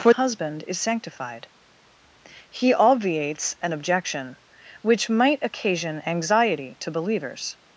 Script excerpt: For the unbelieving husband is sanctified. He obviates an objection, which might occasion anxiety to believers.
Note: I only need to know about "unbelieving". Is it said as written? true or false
false